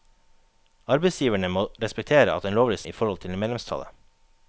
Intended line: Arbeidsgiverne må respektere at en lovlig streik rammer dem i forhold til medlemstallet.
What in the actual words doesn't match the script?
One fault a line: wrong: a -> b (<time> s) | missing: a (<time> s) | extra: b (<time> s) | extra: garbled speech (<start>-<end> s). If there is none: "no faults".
missing: streik rammer dem (2.8 s)